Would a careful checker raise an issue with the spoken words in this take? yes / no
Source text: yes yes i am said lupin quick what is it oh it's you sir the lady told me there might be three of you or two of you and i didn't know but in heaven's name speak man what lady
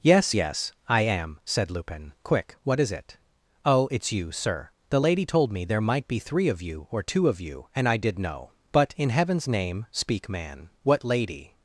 yes